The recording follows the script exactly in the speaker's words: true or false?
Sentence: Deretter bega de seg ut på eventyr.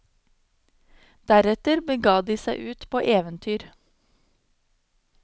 true